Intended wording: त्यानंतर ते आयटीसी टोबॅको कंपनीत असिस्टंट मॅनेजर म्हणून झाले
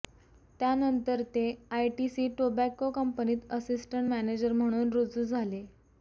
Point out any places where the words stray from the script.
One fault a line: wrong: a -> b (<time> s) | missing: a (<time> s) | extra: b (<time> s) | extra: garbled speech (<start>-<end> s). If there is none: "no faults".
extra: रुजू (4.9 s)